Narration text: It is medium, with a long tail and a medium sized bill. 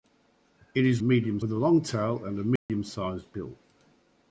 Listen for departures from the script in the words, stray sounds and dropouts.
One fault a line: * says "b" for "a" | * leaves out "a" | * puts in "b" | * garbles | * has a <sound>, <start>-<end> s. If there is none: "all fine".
* has a dropout, 2.6-2.7 s